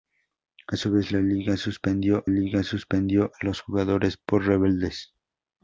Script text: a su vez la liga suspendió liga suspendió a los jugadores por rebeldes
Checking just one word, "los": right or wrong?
right